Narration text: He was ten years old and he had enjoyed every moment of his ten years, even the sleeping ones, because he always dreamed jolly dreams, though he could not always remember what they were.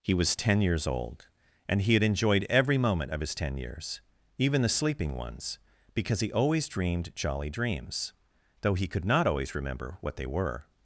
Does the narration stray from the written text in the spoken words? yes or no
no